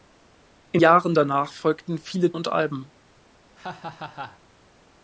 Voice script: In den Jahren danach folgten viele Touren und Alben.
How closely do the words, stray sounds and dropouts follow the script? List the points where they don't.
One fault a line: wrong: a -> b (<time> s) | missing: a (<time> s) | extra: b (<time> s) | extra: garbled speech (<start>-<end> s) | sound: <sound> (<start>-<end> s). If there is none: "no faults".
missing: den (0.8 s)
missing: Touren (2.3 s)
sound: laugh (3.6-4.4 s)